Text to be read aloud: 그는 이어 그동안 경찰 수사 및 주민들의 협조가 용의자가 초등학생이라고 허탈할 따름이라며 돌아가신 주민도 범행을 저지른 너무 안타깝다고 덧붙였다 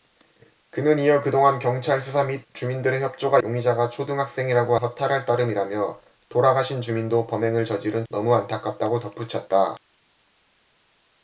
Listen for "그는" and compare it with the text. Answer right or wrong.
right